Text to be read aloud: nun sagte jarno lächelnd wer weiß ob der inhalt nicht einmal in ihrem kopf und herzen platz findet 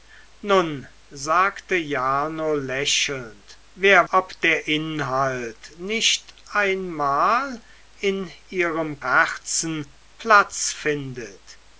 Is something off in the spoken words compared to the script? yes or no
yes